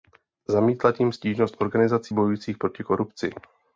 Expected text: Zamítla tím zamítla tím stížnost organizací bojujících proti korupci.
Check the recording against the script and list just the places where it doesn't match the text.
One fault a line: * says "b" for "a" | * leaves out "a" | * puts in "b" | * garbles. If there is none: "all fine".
* leaves out "zamítla tím"